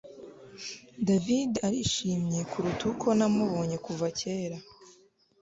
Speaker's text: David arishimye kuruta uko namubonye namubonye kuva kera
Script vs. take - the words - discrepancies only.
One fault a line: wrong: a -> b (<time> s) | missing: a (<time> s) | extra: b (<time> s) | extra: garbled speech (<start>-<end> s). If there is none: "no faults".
missing: namubonye (3.8 s)